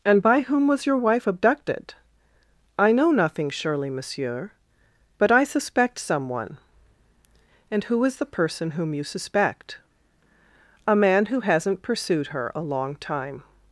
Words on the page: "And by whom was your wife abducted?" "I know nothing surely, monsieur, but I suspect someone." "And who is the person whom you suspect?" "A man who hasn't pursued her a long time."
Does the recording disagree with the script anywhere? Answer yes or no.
no